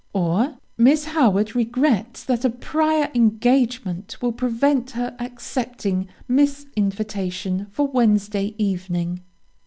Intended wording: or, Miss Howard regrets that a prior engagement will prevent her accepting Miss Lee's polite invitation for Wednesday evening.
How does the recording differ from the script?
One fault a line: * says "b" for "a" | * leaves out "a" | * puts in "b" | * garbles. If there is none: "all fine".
* leaves out "Lee's polite"